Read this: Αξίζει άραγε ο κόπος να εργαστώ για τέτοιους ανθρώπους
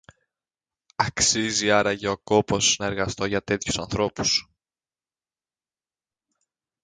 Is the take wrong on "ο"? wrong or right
right